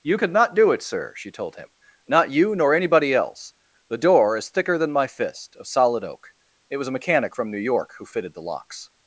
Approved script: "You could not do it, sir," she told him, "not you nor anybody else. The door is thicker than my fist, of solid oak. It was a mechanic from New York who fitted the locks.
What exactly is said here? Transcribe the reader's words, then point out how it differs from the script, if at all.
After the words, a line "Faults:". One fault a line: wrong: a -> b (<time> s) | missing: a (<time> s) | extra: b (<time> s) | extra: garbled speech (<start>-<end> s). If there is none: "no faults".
"You could not do it, sir," she told him, "not you nor anybody else. The door is thicker than my fist, of solid oak. It was a mechanic from New York who fitted the locks.
Faults:
no faults